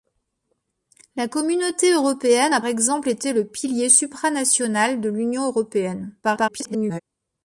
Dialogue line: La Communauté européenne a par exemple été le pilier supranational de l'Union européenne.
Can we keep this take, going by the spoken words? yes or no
no